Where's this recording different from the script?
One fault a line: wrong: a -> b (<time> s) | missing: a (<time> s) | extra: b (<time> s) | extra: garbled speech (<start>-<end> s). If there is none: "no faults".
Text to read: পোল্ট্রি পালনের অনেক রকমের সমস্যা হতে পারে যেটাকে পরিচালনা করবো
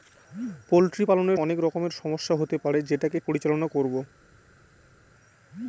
no faults